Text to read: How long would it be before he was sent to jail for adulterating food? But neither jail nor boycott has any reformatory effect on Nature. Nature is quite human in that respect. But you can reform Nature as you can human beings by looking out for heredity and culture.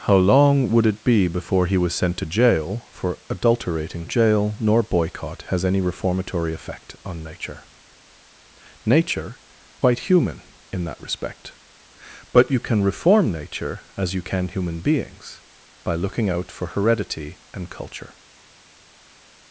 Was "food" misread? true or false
true